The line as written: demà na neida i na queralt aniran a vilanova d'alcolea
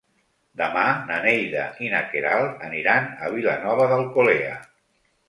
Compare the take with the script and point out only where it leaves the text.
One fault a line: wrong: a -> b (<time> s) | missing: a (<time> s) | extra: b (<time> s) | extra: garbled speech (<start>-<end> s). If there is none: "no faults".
no faults